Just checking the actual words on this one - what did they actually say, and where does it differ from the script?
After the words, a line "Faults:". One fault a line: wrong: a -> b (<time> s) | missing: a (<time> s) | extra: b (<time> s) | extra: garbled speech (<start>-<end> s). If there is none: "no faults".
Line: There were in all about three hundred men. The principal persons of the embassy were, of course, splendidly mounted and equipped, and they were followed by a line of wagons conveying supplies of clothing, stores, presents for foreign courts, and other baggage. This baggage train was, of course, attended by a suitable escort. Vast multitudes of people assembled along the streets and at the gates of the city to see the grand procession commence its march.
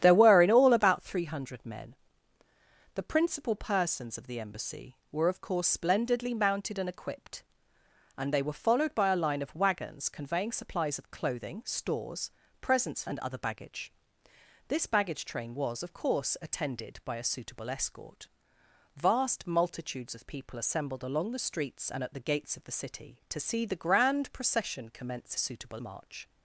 There were in all about three hundred men. The principal persons of the embassy were, of course, splendidly mounted and equipped, and they were followed by a line of wagons conveying supplies of clothing, stores, presents and other baggage. This baggage train was, of course, attended by a suitable escort. Vast multitudes of people assembled along the streets and at the gates of the city to see the grand procession commence suitable march.
Faults:
missing: for foreign courts (13.0 s)
wrong: its -> suitable (25.4 s)